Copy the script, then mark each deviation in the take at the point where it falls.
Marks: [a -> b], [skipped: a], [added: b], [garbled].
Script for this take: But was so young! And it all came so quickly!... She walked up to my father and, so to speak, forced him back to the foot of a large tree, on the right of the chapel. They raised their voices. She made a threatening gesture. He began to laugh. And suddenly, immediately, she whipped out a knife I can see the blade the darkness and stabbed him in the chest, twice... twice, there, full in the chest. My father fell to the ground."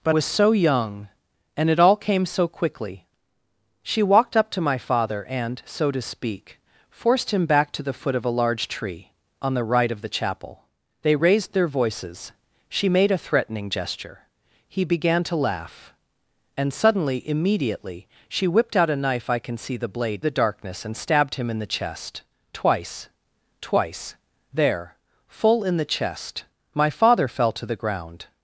But was so young! And it all came so quickly!... She walked up to my father and, so to speak, forced him back to the foot of a large tree, on the right of the chapel. They raised their voices. She made a threatening gesture. He began to laugh. And suddenly, immediately, she whipped out a knife I can see the blade the darkness and stabbed him in the chest, twice... twice, there, full in the chest. My father fell to the ground."